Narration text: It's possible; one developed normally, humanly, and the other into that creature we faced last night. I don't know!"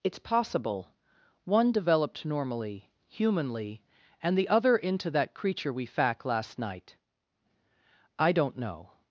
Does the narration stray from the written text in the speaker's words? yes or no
yes